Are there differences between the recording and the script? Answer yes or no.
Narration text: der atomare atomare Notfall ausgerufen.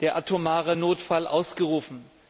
yes